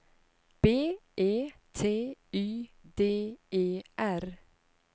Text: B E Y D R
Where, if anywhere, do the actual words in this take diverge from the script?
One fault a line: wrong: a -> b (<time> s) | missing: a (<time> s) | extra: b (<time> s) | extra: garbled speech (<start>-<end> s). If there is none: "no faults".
extra: T (1.7 s)
extra: E (3.5 s)